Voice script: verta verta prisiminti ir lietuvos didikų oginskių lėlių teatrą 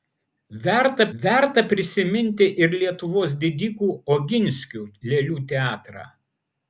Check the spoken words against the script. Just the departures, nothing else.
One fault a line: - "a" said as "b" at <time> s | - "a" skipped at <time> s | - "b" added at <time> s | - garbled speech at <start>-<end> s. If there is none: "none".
none